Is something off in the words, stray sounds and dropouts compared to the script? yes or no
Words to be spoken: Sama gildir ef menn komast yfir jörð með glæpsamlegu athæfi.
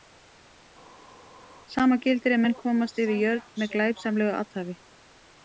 no